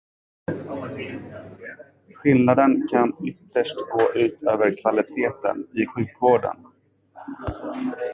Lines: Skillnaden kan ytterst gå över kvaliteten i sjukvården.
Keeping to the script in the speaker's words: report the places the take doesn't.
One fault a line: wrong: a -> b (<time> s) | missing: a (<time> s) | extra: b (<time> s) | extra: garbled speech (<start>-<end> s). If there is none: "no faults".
extra: ut (4.1 s)